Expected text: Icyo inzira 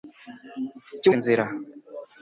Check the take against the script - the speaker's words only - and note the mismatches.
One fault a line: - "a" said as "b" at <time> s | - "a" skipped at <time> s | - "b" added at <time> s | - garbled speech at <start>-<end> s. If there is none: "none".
none